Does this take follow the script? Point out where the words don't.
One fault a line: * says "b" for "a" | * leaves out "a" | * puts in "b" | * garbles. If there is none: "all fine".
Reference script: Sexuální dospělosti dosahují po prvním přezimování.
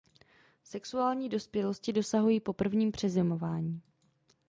all fine